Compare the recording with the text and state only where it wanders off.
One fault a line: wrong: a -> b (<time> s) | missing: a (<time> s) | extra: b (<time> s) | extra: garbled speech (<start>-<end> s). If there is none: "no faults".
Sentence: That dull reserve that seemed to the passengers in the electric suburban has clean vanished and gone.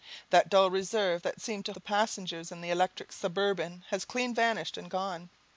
no faults